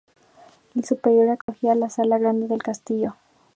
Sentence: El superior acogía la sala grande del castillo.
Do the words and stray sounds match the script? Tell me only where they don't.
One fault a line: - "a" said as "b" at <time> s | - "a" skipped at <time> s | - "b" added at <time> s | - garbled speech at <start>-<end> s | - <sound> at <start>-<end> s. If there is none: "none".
- dropout at 1.4-1.5 s